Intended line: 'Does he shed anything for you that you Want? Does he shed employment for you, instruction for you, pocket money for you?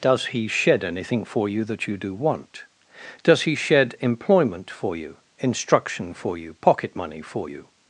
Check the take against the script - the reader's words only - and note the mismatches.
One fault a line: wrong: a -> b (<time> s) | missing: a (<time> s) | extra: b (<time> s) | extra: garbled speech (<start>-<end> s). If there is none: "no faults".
extra: DO (1.9 s)